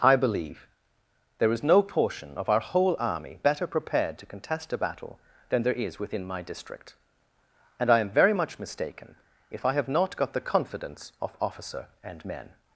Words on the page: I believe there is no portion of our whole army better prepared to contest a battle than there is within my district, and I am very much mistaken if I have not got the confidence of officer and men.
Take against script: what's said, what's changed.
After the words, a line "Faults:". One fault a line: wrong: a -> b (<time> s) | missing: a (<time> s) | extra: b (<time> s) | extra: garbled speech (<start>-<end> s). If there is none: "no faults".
I believe there is no portion of our whole army better prepared to contest a battle than there is within my district, and I am very much mistaken if I have not got the confidence of officer and men.
Faults:
no faults